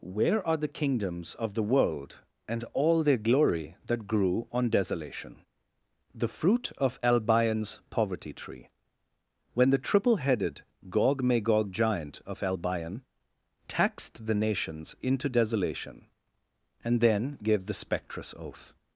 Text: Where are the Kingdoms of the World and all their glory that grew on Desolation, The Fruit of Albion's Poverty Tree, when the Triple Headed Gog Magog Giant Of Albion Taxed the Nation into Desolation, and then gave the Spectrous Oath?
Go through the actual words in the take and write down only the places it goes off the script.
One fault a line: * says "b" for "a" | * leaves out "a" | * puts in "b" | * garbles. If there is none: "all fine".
* says "Nations" for "Nation"